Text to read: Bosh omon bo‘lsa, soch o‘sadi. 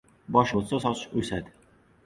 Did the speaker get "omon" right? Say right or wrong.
wrong